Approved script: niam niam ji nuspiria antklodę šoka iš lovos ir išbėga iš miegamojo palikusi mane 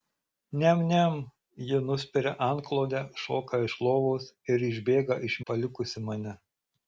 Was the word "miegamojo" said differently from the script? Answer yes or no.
yes